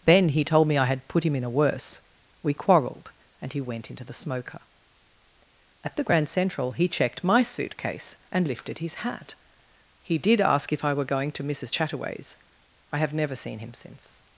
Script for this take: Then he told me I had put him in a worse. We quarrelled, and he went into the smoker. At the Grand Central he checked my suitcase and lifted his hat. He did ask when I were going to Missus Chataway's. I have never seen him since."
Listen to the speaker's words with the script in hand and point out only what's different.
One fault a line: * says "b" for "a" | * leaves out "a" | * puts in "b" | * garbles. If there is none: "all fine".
* says "if" for "when"